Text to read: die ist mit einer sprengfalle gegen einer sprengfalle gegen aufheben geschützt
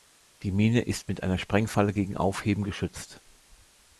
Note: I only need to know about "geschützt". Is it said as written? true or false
true